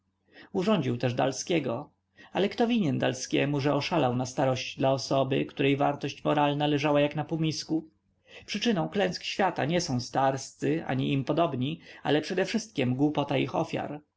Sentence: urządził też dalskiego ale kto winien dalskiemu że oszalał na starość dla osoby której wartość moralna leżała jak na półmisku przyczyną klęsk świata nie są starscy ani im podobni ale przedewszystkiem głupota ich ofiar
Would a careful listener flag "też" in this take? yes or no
no